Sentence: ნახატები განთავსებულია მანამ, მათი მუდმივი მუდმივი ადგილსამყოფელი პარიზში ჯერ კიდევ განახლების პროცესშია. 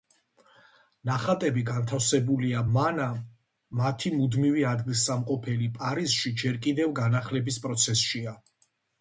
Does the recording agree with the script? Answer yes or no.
no